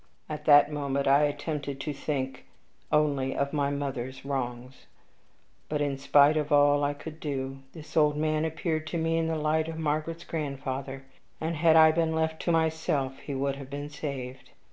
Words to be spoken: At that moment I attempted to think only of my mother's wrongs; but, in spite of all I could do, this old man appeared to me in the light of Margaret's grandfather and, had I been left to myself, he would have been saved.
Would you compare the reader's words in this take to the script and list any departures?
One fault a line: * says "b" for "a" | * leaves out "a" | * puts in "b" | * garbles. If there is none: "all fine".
all fine